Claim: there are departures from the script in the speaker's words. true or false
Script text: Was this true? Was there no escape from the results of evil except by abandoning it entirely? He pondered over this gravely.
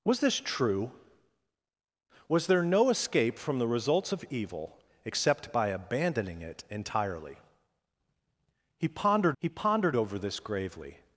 true